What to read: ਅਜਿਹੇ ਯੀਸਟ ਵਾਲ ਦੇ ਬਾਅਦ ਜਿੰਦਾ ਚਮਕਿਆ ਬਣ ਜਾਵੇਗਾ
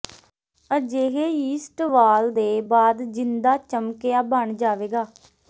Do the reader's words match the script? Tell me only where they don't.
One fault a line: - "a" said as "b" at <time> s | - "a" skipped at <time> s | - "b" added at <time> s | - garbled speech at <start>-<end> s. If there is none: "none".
none